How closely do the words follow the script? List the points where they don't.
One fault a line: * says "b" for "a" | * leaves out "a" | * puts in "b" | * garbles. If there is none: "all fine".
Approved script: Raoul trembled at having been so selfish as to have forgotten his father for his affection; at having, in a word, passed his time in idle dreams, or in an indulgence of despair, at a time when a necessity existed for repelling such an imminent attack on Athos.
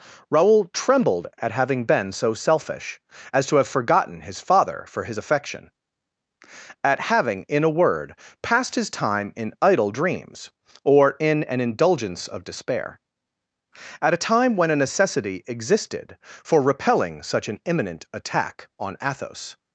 all fine